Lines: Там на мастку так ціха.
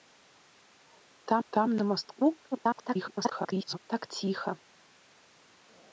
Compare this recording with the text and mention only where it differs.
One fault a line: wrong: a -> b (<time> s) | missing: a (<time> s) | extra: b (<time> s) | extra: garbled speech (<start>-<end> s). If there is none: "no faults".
extra: там (1.5 s)
extra: garbled speech (2.5-3.8 s)